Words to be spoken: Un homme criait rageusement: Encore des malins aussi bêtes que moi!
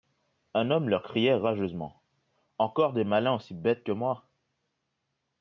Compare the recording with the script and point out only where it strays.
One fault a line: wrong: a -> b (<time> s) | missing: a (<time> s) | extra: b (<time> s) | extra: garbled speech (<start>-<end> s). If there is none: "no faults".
extra: leur (0.9 s)